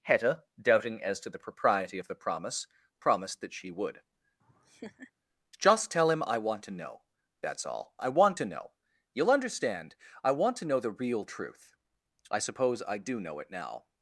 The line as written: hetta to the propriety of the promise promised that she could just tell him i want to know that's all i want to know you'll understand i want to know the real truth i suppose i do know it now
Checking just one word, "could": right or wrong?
wrong